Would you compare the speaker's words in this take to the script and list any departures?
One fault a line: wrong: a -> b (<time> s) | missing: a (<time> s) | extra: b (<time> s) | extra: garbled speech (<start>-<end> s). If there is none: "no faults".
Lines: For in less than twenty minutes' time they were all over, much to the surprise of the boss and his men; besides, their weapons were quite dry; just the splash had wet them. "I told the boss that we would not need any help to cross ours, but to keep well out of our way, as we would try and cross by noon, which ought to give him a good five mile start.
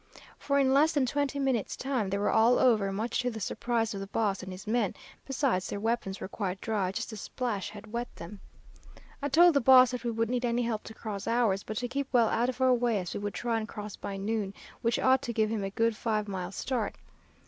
missing: not (10.3 s)